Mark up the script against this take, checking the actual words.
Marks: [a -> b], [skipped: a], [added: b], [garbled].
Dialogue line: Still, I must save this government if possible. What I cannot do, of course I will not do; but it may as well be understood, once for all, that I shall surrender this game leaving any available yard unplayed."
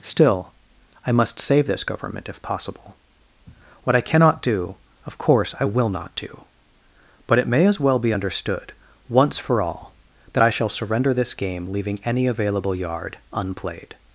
Still, I must save this government if possible. What I cannot do, of course I will not do; but it may as well be understood, once for all, that I shall surrender this game leaving any available yard unplayed."